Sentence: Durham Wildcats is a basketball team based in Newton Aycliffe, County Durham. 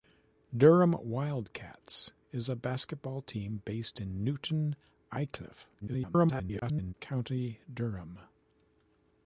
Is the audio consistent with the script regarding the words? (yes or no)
no